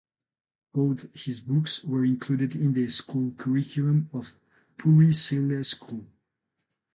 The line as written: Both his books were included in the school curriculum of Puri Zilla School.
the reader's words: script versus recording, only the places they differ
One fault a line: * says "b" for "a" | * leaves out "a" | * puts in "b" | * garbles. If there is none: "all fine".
all fine